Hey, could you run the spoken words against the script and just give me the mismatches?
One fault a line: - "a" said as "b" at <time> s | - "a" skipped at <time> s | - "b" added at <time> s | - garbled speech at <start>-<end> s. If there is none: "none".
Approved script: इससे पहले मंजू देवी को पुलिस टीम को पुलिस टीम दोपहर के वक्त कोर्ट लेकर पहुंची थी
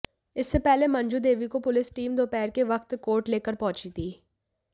- "को पुलिस टीम" skipped at 2.1 s